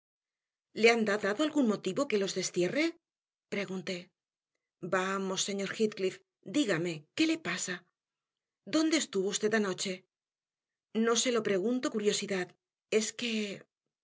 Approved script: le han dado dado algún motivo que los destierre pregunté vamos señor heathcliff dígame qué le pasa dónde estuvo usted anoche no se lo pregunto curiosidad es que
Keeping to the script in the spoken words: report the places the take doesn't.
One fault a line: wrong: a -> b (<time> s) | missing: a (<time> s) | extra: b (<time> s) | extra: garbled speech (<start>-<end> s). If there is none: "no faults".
no faults